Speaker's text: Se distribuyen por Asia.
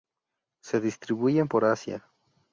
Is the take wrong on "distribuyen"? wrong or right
right